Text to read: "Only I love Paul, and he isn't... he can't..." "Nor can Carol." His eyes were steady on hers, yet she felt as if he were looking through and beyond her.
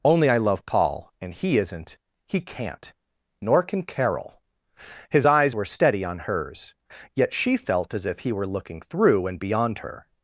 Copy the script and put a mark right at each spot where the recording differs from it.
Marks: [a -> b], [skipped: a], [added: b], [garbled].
"Only I love Paul, and he isn't... he can't..." "Nor can Carol." His eyes were steady on hers, yet she felt as if he were looking through and beyond her.